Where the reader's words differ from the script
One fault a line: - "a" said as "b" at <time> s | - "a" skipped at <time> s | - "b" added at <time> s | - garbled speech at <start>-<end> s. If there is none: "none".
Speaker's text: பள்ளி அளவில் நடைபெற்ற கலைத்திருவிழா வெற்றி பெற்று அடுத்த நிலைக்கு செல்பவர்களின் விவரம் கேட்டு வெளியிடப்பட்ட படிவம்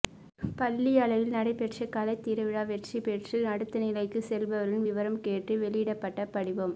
none